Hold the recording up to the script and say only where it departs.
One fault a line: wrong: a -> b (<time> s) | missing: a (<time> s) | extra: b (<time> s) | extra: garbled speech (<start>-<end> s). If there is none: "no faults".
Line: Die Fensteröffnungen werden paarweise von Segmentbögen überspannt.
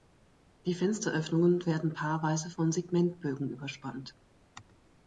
no faults